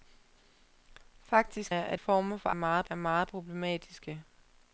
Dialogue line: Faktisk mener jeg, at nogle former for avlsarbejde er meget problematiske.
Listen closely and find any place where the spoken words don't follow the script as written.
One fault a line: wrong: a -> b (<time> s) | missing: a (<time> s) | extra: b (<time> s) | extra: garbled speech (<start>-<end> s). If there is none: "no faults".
missing: mener (1.7 s)
missing: nogle (2.0 s)
wrong: avlsarbejde -> meget (2.5 s)